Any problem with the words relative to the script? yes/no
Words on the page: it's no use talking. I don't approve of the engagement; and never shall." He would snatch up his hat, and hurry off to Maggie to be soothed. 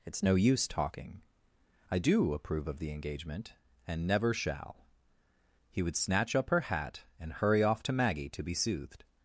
yes